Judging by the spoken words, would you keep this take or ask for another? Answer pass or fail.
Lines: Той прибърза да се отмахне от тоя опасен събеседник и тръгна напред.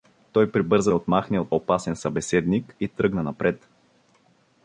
fail